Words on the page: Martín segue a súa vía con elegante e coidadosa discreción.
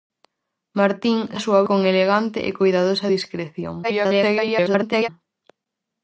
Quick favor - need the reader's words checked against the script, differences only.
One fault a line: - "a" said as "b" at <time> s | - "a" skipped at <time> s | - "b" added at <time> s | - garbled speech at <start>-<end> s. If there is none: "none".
- "segue" skipped at 1.2 s
- "vía" skipped at 1.6 s
- garbled speech at 3.8-5.1 s